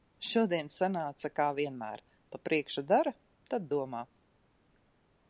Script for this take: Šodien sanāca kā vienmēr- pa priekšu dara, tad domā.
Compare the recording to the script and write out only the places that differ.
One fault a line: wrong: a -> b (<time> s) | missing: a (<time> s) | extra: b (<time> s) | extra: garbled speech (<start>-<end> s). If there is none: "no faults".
no faults